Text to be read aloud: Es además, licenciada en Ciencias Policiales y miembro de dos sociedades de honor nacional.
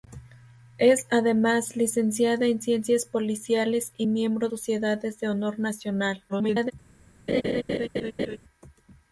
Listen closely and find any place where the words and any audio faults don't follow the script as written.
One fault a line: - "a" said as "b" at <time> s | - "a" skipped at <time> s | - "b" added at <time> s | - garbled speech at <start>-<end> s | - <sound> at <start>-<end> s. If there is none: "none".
- "de dos" skipped at 4.5 s
- garbled speech at 6.3-6.7 s
- laugh at 7.3-8.4 s